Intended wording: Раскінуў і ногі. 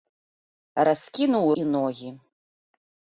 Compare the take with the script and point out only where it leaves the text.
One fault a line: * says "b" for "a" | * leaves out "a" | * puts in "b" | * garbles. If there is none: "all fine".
all fine